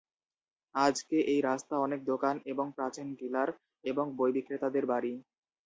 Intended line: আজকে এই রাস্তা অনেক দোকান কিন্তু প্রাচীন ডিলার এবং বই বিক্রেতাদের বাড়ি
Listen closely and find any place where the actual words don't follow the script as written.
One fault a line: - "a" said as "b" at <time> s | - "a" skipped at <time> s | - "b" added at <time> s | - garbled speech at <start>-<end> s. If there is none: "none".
- "কিন্তু" said as "এবং" at 2.5 s